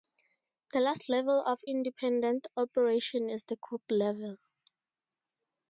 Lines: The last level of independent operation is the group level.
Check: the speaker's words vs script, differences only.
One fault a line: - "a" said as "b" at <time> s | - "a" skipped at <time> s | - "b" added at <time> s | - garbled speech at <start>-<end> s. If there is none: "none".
none